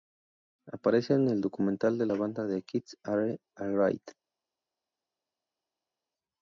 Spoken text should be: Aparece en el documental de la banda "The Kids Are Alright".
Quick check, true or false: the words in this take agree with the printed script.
true